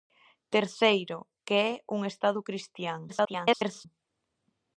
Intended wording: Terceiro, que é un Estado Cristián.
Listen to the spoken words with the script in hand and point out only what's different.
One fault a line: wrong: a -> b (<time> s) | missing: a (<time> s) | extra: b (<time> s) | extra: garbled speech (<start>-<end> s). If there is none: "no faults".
extra: garbled speech (3.1-3.9 s)